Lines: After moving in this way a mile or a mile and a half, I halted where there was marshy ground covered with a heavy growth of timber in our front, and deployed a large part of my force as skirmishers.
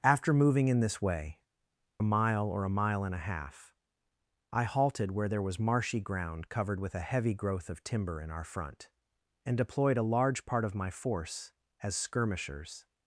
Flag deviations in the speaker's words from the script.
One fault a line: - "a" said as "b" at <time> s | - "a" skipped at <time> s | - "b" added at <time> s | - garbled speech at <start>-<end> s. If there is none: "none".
none